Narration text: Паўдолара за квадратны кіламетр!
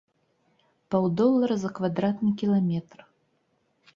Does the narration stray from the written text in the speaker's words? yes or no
no